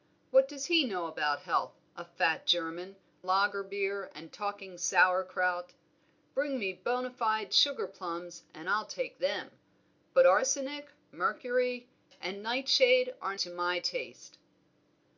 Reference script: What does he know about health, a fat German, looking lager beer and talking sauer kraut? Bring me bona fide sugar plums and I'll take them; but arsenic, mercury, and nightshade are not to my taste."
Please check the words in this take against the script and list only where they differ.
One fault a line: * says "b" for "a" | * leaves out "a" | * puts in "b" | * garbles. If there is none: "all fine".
* leaves out "looking"
* leaves out "not"